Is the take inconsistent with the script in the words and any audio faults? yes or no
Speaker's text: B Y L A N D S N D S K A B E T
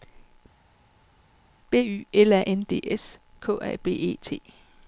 yes